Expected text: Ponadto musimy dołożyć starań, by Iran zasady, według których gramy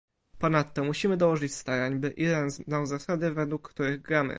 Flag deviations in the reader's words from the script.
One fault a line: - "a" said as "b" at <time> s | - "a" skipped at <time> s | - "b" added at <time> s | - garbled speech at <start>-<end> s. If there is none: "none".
- "znał" added at 2.5 s